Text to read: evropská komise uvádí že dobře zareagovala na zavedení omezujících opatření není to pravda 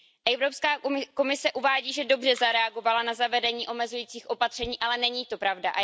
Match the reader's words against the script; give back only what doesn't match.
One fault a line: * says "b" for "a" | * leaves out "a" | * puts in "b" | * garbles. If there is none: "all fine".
* puts in "ale"